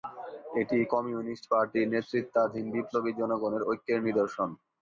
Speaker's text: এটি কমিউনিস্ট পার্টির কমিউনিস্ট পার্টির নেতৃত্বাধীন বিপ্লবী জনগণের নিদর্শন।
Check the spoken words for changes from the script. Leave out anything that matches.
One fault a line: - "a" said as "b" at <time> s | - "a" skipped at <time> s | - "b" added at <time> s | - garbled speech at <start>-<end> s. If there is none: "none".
- "কমিউনিস্ট পার্টির" skipped at 1.9 s
- "ঐক্যের" added at 3.7 s